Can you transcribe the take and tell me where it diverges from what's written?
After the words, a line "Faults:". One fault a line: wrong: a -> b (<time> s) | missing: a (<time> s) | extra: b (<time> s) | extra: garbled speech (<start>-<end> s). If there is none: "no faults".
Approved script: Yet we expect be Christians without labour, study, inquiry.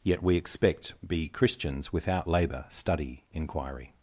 Yet we expect be Christians without labour, study, inquiry.
Faults:
no faults